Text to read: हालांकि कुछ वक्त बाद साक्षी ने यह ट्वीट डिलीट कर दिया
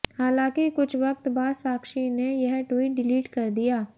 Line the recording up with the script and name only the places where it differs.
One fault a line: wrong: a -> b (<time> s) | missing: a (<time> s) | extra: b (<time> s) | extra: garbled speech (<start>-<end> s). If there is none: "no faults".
no faults